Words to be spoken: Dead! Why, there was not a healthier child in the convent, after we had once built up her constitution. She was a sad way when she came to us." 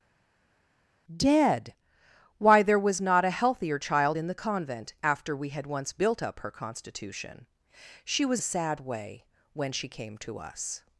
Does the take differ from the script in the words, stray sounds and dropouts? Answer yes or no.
no